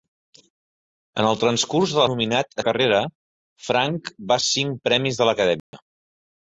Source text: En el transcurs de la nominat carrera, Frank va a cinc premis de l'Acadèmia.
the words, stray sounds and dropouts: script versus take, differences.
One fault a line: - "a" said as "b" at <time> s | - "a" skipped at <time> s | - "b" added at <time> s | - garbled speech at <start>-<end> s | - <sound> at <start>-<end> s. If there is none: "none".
- dropout at 5.6-5.7 s